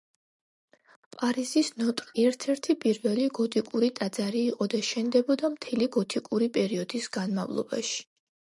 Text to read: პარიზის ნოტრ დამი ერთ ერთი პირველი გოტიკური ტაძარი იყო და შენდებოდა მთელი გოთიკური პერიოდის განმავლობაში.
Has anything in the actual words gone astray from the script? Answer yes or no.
yes